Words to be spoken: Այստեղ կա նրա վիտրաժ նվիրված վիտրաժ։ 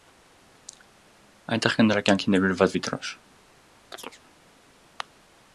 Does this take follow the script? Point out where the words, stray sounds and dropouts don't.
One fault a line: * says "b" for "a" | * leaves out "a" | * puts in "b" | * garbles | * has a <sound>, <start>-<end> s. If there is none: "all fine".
* says "Այնտեղ" for "Այստեղ"
* says "կյանքին" for "վիտրաժ"
* has a chirp, 3.9-4.2 s